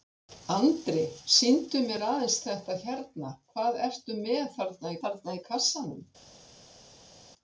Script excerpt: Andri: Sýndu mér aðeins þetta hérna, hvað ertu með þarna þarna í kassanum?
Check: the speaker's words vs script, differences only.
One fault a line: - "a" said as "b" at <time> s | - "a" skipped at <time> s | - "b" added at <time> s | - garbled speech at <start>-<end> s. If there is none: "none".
none